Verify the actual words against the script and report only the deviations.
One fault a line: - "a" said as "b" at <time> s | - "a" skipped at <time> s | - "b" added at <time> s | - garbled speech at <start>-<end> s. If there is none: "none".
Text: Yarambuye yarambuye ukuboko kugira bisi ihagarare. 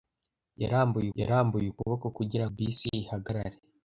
none